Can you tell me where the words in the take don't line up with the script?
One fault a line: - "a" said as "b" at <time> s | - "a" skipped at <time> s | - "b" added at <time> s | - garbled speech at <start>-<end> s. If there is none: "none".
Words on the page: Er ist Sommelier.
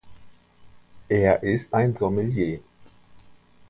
- "ein" added at 1.7 s